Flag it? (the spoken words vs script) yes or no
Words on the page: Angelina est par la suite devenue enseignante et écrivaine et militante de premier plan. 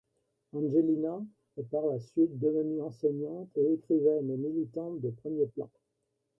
no